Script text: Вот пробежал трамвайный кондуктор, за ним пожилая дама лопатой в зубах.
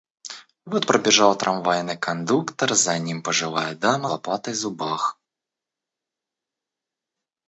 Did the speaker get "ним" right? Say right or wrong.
right